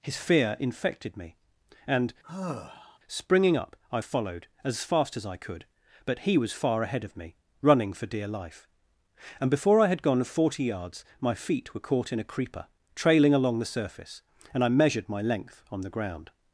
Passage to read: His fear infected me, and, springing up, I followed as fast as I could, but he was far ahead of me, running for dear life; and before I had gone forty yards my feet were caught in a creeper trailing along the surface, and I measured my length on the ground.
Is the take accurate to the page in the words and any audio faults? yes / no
no